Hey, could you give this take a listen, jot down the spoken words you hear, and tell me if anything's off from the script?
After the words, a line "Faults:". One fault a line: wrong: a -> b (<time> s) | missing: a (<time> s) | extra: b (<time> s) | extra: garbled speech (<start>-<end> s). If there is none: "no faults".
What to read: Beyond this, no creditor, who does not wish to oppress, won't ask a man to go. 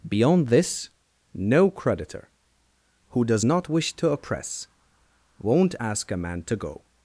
Beyond this, no creditor, who does not wish to oppress, won't ask a man to go.
Faults:
no faults